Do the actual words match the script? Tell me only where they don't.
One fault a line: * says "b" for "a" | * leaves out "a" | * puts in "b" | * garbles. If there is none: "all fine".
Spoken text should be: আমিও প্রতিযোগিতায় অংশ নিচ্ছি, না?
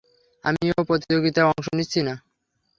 all fine